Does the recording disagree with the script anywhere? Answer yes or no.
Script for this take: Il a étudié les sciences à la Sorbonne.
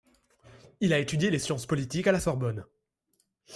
yes